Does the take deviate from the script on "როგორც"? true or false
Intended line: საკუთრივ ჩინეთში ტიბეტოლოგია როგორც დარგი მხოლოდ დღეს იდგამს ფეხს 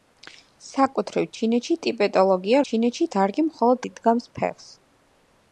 true